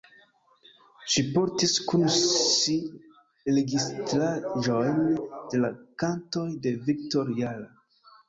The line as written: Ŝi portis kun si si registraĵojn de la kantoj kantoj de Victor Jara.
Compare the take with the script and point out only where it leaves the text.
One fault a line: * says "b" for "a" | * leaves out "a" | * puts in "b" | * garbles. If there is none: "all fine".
* leaves out "si"
* leaves out "kantoj"